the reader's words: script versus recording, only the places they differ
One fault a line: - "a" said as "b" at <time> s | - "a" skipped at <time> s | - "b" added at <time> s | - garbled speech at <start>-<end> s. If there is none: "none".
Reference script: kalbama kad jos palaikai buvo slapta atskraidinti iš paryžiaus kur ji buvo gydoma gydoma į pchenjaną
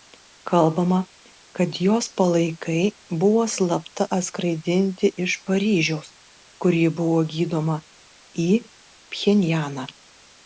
- "gydoma" skipped at 7.8 s